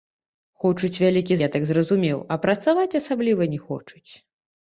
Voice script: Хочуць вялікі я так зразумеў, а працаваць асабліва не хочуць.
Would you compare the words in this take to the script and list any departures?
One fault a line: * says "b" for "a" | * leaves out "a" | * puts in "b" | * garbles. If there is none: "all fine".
all fine